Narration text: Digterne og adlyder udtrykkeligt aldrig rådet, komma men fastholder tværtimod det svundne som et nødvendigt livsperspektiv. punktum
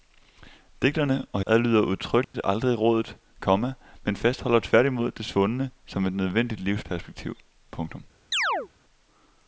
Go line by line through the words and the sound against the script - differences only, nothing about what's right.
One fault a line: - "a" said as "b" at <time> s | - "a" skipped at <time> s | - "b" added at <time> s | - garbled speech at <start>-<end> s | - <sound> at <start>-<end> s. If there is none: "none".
- dropout at 2.2-2.3 s
- chirp at 8.3-8.7 s